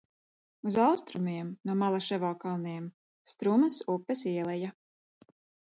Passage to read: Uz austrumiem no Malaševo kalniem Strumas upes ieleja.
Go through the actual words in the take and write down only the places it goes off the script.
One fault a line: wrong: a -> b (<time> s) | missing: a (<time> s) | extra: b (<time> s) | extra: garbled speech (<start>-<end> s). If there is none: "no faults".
no faults